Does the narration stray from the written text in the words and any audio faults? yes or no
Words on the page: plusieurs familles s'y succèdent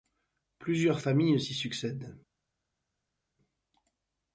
no